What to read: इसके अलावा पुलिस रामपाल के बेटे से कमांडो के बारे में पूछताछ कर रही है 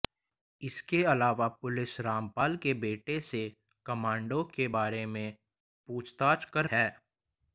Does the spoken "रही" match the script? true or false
false